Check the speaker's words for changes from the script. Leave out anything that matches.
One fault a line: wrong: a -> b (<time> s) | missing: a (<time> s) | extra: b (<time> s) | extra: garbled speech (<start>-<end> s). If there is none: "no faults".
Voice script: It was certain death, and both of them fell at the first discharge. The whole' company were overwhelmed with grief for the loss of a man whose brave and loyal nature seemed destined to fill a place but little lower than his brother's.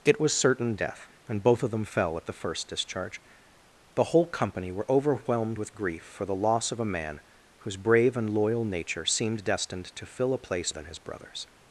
missing: but little lower (10.7 s)